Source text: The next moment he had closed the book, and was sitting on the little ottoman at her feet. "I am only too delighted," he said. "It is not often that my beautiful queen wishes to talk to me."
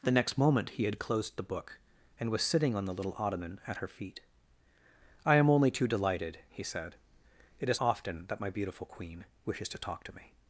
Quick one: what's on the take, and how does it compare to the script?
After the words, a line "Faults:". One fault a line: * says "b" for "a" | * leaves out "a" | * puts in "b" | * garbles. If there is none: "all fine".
The next moment he had closed the book, and was sitting on the little ottoman at her feet. "I am only too delighted," he said. "It is often that my beautiful queen wishes to talk to me."
Faults:
* leaves out "not"